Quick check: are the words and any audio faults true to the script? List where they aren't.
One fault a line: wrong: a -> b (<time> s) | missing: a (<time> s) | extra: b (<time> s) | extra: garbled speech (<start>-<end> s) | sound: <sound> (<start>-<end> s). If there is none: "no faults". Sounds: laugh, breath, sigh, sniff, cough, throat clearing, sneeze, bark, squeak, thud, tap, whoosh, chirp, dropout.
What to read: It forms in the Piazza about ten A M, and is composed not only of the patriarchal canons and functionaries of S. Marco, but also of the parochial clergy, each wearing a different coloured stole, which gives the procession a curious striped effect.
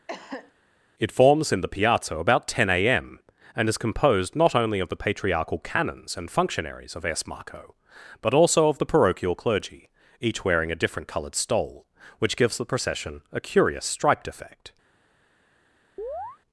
sound: cough (0.1-0.5 s)
sound: chirp (16.0-16.4 s)